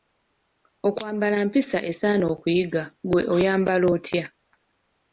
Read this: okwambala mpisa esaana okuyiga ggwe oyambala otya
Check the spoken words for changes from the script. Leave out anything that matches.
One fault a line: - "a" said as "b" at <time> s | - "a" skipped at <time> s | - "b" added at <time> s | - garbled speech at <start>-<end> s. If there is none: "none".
none